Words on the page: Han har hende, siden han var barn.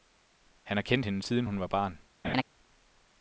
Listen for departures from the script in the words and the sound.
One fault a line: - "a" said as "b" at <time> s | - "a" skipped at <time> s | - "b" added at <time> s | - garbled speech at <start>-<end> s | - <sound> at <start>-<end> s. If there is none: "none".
- "kendt" added at 0.8 s
- "han" said as "hun" at 1.4 s
- laugh at 2.2-2.4 s